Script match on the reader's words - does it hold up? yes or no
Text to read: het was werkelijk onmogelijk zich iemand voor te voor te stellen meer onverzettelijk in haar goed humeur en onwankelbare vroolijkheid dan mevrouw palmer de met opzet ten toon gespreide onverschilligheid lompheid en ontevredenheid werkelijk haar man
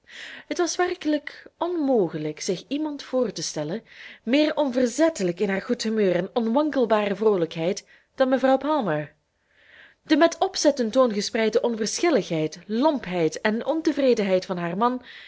no